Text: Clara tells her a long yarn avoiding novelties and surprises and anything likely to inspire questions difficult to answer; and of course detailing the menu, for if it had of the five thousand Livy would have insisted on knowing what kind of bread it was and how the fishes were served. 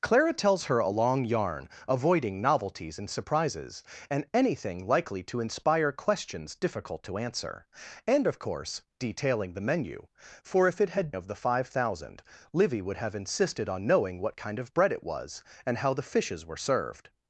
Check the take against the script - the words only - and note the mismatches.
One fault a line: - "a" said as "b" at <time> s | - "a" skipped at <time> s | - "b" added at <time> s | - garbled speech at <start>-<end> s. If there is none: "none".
none